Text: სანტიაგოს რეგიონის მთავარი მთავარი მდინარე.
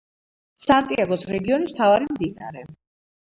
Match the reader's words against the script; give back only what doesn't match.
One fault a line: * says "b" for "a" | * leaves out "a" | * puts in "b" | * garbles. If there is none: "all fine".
* leaves out "მთავარი"